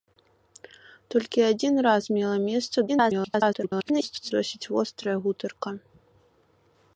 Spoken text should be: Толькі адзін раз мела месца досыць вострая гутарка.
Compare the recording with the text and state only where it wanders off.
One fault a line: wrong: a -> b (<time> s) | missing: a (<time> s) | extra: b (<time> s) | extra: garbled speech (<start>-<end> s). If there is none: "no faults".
extra: garbled speech (2.9-4.3 s)